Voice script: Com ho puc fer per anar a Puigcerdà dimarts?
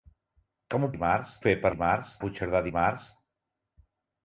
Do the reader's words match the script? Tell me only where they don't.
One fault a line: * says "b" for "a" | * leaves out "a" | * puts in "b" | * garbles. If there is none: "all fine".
* says "dimarts" for "puc"
* says "dimarts" for "anar"